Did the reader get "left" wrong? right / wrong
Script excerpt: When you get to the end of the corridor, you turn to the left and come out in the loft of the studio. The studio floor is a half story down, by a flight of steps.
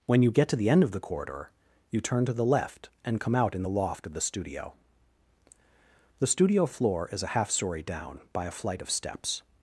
right